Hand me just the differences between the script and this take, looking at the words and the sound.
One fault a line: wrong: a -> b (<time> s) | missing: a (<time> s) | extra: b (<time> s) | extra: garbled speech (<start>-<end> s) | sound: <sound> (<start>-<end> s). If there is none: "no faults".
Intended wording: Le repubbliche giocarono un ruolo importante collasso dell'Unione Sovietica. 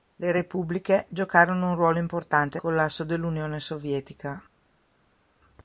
no faults